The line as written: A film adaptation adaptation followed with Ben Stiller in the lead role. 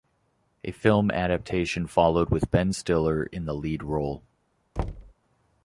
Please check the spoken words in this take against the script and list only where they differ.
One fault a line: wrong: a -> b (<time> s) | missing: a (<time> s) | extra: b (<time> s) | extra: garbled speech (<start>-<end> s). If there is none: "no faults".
missing: adaptation (1.9 s)